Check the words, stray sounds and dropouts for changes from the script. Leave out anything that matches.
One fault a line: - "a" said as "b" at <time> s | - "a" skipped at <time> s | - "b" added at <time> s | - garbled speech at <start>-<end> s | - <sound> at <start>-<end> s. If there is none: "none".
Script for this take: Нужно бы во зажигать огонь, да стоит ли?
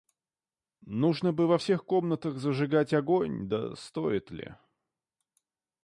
- "всех комнатах" added at 1.6 s